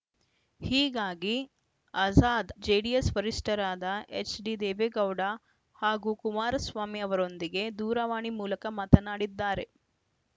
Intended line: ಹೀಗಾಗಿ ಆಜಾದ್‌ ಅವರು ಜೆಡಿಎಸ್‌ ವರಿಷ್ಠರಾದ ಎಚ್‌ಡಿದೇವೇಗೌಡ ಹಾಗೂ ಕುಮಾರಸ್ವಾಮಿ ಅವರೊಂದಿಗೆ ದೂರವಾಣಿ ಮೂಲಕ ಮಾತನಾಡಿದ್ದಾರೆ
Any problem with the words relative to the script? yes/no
yes